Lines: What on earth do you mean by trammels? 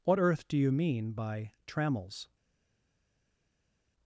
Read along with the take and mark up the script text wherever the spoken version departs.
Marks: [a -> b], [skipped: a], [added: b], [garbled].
What [skipped: on] earth do you mean by trammels?